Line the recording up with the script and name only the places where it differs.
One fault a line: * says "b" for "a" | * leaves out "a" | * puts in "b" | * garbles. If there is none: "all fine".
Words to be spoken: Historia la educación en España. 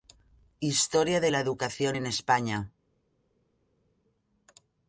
* puts in "de"